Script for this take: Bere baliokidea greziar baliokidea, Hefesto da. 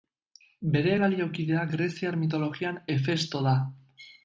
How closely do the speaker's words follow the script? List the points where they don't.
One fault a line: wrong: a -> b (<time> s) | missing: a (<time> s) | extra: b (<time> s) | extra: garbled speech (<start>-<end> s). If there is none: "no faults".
wrong: baliokidea -> mitologian (2.2 s)